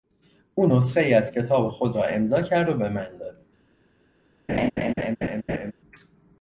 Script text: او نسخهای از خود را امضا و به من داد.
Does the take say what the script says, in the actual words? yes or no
no